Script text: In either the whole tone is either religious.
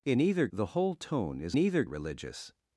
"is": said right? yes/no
yes